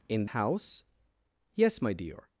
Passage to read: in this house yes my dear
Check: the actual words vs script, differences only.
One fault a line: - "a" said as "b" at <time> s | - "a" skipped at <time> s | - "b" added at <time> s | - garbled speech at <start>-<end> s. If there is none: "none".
- "this" skipped at 0.2 s